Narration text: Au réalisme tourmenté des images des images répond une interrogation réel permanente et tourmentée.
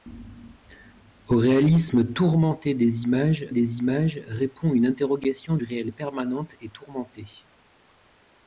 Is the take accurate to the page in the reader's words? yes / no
yes